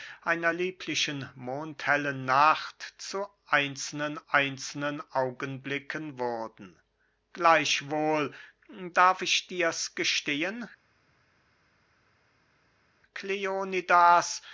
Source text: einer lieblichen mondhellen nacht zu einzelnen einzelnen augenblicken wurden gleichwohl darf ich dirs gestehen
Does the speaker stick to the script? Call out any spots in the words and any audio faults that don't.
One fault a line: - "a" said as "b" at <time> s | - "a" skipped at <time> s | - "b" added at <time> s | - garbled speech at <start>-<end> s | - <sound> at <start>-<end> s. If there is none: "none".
none